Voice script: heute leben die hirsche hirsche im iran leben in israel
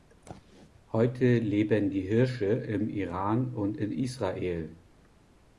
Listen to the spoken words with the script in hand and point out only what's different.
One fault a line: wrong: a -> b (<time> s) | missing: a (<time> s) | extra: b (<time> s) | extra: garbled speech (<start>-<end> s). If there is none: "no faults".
missing: hirsche (2.5 s)
wrong: leben -> und (3.5 s)